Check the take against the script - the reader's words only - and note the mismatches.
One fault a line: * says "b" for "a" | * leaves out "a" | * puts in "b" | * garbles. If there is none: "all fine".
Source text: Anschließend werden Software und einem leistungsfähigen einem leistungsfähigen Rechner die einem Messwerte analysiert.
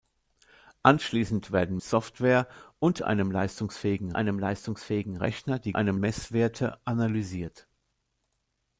all fine